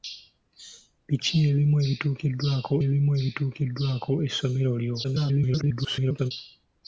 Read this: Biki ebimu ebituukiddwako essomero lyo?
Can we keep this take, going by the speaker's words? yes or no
no